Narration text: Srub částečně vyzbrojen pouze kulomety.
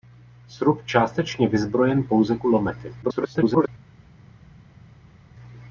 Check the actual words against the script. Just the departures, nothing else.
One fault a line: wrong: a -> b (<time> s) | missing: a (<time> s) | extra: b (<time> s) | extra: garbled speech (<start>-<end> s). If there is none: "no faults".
extra: garbled speech (3.0-3.7 s)